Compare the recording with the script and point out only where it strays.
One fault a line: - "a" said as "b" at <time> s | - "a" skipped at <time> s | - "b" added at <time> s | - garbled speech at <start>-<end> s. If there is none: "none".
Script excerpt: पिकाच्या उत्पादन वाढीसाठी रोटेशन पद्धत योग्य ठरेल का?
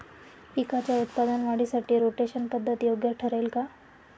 none